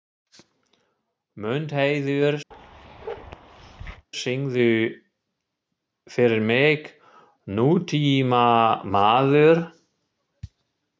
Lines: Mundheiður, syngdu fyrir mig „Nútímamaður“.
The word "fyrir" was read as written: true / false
true